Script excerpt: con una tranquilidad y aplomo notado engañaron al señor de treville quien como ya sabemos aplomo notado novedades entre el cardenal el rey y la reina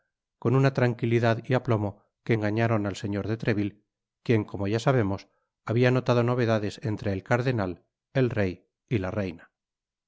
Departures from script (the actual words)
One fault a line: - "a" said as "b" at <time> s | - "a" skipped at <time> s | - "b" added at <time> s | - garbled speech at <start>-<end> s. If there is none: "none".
- "notado" said as "que" at 2.2 s
- "aplomo" said as "habia" at 5.6 s